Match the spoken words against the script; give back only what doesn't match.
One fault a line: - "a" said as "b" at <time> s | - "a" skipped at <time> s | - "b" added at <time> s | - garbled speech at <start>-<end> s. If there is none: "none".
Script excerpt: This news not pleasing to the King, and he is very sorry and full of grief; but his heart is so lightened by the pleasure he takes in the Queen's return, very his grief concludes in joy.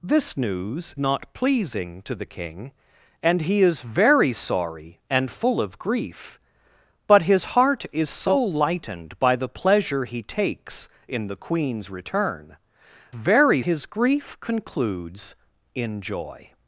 none